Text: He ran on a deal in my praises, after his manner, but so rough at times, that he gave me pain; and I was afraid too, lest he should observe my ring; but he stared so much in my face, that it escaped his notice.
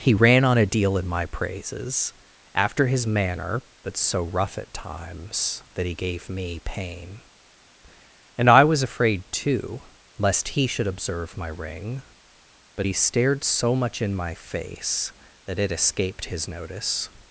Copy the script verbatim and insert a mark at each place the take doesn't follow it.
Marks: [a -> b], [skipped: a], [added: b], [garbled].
He ran on a deal in my praises, after his manner, but so rough at times, that he gave me pain; and I was afraid too, lest he should observe my ring; but he stared so much in my face, that it escaped his notice.